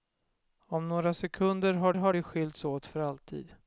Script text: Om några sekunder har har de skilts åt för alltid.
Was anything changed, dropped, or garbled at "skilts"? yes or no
no